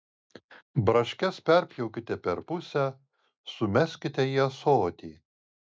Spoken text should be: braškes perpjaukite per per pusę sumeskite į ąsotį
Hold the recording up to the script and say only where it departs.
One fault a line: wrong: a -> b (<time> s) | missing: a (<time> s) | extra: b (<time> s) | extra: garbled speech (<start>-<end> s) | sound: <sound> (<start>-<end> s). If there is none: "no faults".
missing: per (2.4 s)